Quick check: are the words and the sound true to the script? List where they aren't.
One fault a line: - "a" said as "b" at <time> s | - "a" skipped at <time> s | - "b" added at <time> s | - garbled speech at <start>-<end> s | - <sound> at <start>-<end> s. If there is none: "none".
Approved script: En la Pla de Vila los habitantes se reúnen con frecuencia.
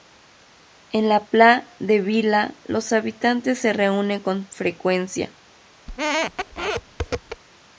- squeak at 5.9-7.4 s